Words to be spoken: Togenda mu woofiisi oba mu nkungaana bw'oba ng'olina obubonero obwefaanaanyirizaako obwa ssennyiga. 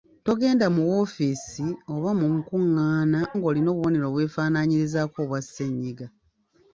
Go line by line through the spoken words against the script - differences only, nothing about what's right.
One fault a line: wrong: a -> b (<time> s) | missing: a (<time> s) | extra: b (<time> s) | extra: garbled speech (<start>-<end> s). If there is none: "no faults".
missing: bw'oba (3.2 s)